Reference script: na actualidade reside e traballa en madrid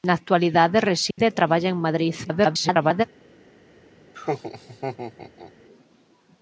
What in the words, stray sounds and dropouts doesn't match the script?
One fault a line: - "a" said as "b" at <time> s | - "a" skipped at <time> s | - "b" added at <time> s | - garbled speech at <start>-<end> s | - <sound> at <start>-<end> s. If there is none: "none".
- dropout at 1.1-1.2 s
- garbled speech at 2.2-3.0 s
- laugh at 4.1-5.5 s